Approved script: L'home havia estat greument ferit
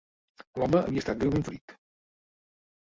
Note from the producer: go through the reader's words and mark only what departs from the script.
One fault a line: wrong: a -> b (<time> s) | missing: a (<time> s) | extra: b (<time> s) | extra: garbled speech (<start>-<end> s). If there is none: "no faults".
no faults